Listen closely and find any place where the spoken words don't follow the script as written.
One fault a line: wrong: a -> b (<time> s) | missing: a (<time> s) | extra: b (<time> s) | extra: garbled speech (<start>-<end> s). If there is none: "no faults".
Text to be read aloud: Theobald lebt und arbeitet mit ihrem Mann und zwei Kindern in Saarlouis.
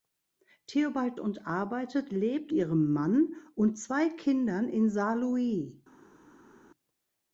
missing: lebt (1.2 s)
wrong: mit -> lebt (2.1 s)